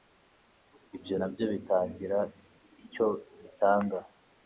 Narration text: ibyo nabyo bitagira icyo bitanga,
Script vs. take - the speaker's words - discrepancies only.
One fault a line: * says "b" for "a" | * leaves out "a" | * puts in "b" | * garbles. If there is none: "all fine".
all fine